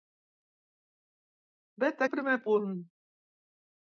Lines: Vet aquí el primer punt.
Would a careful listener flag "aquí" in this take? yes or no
yes